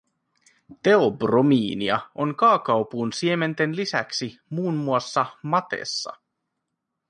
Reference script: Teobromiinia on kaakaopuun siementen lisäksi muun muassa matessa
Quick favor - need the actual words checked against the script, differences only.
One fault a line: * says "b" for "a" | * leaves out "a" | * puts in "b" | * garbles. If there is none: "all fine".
all fine